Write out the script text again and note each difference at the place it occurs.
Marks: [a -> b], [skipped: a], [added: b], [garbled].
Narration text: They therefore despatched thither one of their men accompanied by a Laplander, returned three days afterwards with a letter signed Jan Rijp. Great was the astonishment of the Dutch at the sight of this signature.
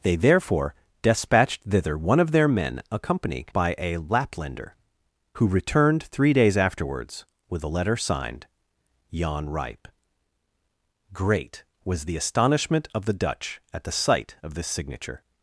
They therefore despatched thither one of their men accompanied by a Laplander, [added: who] returned three days afterwards with a letter signed Jan Rijp. Great was the astonishment of the Dutch at the sight of this signature.